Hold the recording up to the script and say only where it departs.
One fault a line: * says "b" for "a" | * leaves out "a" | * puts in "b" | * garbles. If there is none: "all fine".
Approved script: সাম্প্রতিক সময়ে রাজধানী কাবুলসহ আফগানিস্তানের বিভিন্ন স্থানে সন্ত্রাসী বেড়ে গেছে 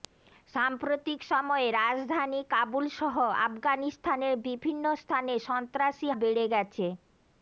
all fine